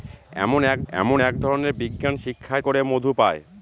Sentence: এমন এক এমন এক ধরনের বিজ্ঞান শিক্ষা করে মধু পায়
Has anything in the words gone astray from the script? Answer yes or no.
no